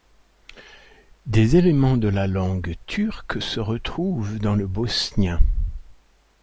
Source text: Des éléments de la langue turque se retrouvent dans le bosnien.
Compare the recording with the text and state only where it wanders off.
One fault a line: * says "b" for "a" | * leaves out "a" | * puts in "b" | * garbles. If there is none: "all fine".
all fine